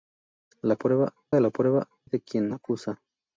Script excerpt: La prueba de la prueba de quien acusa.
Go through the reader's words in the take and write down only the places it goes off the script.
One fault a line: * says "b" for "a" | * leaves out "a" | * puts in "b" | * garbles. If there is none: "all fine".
all fine